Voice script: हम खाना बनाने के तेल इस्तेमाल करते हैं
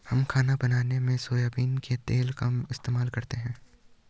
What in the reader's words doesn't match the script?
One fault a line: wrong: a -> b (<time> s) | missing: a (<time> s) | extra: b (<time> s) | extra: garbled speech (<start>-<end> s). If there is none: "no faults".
extra: में सोयाबीन (1.0 s)
extra: का (2.3 s)